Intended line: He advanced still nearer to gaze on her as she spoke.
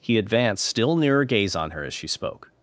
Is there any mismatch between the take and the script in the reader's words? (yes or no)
yes